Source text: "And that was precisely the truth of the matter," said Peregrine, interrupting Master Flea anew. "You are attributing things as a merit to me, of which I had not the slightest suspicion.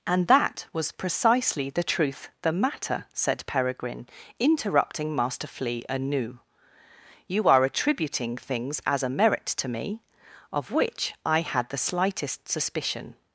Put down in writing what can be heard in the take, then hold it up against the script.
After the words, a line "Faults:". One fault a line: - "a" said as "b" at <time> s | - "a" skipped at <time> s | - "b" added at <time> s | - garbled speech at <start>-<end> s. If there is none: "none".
"And that was precisely the truth the matter," said Peregrine, interrupting Master Flea anew. "You are attributing things as a merit to me, of which I had the slightest suspicion.
Faults:
- "of" skipped at 2.3 s
- "not" skipped at 11.7 s